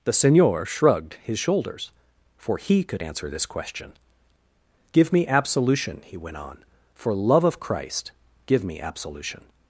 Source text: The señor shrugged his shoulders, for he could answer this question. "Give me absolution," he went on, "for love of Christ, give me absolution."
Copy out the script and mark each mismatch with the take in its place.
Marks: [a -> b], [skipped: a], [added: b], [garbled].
The señor shrugged his shoulders, for he could answer this question. "Give me absolution," he went on, "for love of Christ, give me absolution."